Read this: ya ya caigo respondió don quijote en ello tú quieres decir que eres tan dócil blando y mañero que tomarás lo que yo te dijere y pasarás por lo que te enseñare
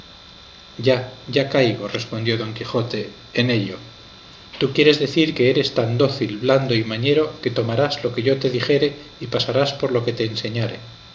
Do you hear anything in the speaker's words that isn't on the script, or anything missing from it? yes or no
no